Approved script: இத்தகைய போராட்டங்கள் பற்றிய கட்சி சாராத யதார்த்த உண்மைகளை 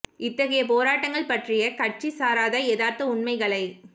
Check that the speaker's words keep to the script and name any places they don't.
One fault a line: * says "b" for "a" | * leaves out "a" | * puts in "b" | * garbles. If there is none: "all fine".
all fine